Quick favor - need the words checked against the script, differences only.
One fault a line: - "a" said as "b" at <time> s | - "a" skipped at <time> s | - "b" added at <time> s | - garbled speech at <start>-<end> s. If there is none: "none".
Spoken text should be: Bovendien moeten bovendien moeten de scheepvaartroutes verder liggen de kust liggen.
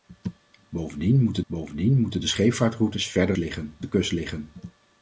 none